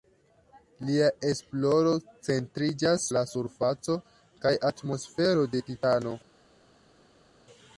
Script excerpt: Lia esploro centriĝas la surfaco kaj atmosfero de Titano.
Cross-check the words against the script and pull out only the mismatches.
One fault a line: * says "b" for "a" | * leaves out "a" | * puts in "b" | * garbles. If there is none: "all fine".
all fine